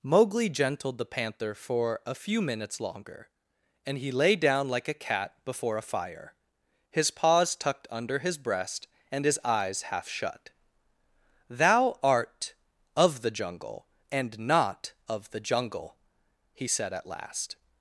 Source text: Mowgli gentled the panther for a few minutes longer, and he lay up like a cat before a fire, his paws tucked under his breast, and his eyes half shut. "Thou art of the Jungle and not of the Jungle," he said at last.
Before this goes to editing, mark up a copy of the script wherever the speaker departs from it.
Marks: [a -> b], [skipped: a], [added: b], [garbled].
Mowgli gentled the panther for a few minutes longer, and he lay [up -> down] like a cat before a fire, his paws tucked under his breast, and his eyes half shut. "Thou art of the Jungle and not of the Jungle," he said at last.